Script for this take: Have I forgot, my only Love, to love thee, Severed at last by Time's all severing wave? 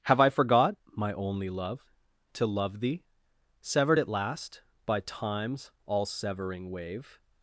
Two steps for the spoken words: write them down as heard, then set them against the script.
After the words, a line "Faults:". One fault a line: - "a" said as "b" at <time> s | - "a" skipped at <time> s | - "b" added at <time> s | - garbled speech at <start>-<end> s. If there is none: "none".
Have I forgot, my only Love, to love thee, Severed at last by Time's all severing wave?
Faults:
none